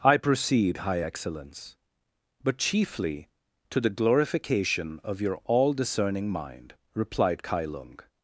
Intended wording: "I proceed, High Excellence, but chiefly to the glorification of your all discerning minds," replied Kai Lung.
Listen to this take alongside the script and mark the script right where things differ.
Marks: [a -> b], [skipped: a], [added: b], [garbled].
"I proceed, High Excellence, but chiefly to the glorification of your all discerning [minds," -> mind] replied Kai Lung.